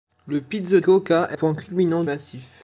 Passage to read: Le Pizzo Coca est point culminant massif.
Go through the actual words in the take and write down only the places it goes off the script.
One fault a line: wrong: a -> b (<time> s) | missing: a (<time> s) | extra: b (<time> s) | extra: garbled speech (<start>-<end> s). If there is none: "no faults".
no faults